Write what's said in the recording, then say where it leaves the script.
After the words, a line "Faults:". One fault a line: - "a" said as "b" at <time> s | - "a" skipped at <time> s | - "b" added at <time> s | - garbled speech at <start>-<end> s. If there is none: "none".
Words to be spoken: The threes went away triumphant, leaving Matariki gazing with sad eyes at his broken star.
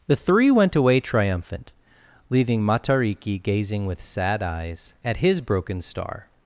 The three went away triumphant, leaving Matariki gazing with sad eyes at his broken star.
Faults:
- "threes" said as "three" at 0.1 s